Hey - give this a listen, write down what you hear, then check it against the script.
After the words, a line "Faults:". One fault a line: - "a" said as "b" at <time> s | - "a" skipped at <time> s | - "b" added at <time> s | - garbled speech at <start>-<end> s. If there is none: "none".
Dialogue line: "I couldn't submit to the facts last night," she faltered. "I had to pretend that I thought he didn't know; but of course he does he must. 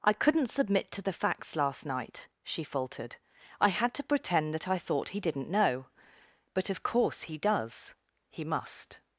"I couldn't submit to the facts last night," she faltered. "I had to pretend that I thought he didn't know; but of course he does he must.
Faults:
none